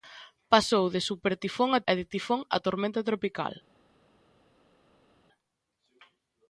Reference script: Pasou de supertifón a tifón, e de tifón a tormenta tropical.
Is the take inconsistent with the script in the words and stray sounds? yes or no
yes